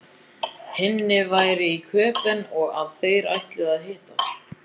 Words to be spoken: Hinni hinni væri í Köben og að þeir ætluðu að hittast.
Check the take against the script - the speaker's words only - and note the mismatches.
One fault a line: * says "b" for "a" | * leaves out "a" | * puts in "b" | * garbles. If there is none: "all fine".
* leaves out "hinni"